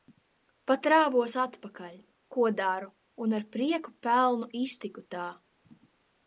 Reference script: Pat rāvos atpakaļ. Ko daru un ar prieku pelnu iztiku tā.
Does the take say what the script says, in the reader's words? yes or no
yes